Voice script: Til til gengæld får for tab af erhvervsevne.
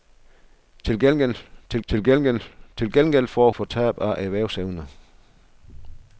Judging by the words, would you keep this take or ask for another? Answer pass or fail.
pass